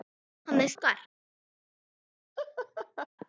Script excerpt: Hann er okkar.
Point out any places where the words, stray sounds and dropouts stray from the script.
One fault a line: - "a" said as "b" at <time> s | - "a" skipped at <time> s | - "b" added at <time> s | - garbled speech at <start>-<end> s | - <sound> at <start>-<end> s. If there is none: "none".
- laugh at 2.4-3.1 s